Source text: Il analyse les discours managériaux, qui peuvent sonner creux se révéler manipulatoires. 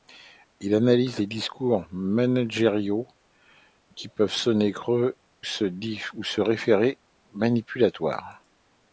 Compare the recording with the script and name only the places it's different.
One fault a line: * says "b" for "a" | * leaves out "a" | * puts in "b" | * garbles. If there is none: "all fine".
all fine